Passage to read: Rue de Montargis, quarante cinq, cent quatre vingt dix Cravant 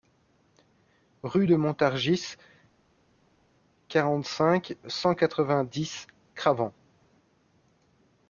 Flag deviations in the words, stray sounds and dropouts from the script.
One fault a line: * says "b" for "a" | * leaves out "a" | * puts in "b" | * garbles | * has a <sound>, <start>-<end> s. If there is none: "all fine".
all fine